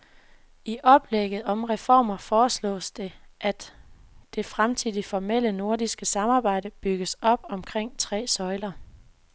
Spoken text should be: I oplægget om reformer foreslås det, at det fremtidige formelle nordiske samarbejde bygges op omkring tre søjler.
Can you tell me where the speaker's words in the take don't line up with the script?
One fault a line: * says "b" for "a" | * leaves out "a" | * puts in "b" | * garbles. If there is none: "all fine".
all fine